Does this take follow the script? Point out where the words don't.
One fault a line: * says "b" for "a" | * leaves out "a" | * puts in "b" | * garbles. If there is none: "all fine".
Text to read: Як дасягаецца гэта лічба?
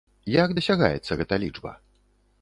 all fine